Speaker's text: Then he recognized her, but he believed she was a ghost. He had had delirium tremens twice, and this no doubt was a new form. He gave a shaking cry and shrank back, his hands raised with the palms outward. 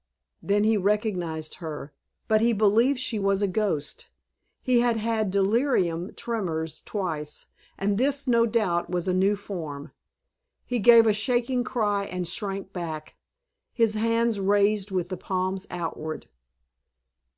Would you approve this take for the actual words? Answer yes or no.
yes